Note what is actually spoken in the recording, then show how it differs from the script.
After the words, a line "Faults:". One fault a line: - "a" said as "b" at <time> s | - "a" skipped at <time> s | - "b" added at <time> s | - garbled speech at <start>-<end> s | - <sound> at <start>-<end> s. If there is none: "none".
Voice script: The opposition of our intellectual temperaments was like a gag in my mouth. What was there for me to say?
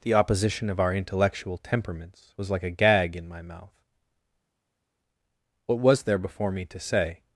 The opposition of our intellectual temperaments was like a gag in my mouth. What was there before me to say?
Faults:
- "for" said as "before" at 6.2 s